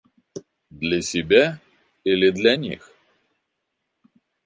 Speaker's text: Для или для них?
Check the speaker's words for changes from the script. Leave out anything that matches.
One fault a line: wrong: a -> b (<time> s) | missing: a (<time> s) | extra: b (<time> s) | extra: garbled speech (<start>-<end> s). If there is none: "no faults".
extra: себя (1.0 s)